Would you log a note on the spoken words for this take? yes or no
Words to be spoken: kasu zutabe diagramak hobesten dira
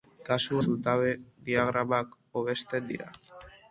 no